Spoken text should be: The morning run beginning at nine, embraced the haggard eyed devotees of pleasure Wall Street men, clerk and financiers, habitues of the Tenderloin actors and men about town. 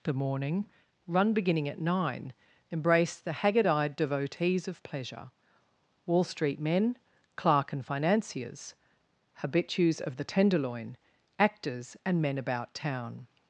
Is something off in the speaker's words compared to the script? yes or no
no